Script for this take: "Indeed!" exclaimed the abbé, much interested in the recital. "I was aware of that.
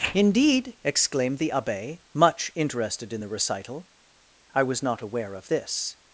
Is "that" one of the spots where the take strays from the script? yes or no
yes